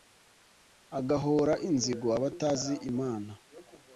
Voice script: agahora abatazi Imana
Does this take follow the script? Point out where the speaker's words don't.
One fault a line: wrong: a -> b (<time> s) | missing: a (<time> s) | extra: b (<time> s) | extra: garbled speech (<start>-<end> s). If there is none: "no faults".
extra: inzigo (1.7 s)